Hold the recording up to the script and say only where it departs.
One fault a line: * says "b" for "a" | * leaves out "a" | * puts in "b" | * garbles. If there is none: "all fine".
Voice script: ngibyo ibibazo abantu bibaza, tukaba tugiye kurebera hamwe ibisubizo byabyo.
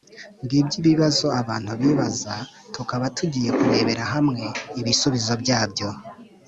all fine